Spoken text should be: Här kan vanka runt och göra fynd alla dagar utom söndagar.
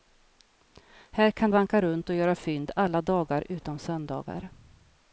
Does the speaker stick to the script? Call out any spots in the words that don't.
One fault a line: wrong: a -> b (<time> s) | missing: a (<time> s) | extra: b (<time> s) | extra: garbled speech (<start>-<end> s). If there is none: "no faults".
no faults